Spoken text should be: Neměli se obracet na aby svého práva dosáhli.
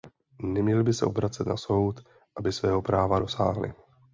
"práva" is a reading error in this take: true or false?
false